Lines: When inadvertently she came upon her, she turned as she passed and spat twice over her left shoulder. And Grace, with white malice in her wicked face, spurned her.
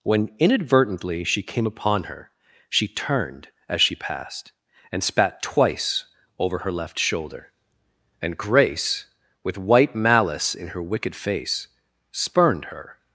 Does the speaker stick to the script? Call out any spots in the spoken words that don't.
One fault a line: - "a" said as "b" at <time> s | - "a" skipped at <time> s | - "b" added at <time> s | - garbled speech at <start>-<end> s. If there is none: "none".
none